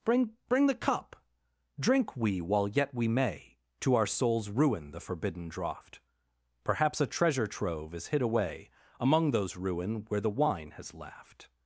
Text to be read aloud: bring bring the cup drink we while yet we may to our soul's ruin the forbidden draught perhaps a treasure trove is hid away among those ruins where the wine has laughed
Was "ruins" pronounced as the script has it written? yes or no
no